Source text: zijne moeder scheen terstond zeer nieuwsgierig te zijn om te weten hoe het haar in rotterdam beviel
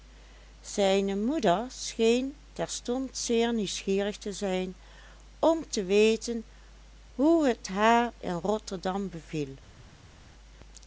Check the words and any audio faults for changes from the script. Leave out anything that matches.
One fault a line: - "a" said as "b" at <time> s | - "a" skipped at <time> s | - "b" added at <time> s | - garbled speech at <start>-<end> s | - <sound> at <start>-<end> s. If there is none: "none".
none